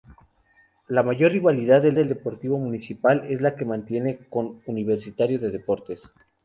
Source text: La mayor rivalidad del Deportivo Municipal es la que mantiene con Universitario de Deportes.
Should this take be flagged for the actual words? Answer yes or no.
yes